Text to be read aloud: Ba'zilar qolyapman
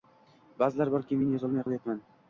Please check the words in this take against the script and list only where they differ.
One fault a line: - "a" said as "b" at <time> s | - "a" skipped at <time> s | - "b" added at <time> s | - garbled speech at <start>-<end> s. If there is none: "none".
- "borki men yozolmay" added at 0.9 s